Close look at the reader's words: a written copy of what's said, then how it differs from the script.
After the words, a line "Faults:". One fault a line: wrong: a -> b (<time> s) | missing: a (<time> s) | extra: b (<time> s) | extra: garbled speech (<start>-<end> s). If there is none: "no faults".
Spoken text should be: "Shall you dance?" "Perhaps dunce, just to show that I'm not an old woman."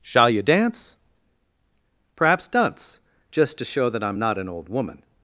"Shall you dance?" "Perhaps dunce, just to show that I'm not an old woman."
Faults:
no faults